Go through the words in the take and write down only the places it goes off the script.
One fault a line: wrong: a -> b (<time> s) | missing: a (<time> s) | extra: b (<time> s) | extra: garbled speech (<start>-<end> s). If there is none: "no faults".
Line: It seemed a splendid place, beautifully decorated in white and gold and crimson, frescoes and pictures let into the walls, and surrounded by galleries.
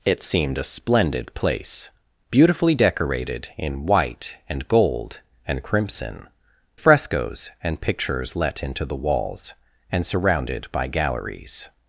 no faults